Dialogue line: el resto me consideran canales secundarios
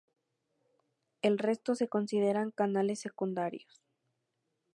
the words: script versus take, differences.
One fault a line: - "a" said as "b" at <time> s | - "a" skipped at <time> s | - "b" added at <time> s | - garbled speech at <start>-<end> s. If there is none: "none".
- "me" said as "se" at 1.7 s